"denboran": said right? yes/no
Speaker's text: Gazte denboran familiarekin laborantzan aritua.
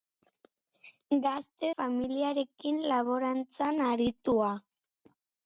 no